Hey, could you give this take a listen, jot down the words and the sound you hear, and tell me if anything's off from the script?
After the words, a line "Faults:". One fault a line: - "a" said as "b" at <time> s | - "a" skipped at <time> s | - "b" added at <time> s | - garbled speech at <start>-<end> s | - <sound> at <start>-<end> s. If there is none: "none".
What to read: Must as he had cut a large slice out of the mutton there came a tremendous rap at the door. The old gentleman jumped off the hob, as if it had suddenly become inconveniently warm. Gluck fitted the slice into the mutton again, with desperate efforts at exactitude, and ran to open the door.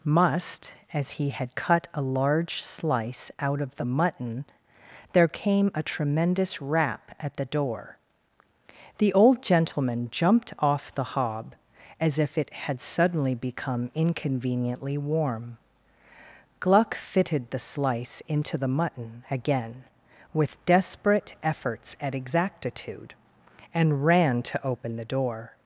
Must as he had cut a large slice out of the mutton there came a tremendous rap at the door. The old gentleman jumped off the hob, as if it had suddenly become inconveniently warm. Gluck fitted the slice into the mutton again, with desperate efforts at exactitude, and ran to open the door.
Faults:
none